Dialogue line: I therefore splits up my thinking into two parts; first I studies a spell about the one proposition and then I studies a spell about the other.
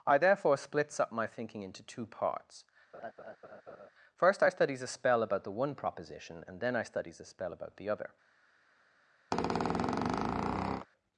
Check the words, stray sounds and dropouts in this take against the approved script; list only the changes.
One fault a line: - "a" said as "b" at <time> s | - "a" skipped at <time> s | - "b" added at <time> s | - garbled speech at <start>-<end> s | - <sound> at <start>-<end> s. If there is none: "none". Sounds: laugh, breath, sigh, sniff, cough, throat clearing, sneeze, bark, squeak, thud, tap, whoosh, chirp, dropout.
- laugh at 2.9-3.9 s
- squeak at 9.3-10.9 s